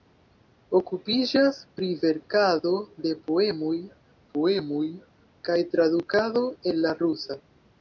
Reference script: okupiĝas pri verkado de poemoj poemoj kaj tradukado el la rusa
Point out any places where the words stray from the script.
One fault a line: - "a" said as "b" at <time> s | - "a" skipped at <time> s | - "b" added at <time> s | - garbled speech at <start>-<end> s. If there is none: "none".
none